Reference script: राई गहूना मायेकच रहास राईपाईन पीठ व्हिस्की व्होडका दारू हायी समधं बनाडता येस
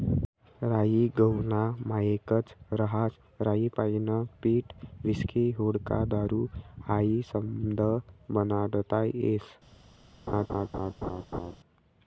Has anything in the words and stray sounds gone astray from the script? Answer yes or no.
yes